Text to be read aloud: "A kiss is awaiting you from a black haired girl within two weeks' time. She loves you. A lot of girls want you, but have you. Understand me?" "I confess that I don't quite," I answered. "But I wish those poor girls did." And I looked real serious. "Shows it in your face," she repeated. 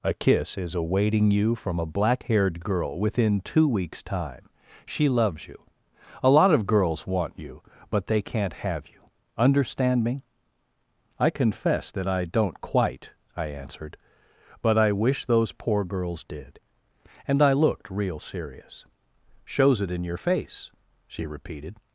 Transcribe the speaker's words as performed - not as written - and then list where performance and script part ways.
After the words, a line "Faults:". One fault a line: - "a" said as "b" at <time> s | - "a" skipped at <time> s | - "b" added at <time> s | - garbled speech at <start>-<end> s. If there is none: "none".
"A kiss is awaiting you from a black haired girl within two weeks' time. She loves you. A lot of girls want you, but they can't have you. Understand me?" "I confess that I don't quite," I answered. "But I wish those poor girls did." And I looked real serious. "Shows it in your face," she repeated.
Faults:
- "they can't" added at 8.1 s